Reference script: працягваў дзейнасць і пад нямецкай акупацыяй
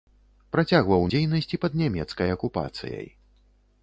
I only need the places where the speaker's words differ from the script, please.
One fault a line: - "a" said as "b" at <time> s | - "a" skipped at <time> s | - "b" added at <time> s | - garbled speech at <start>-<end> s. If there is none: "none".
none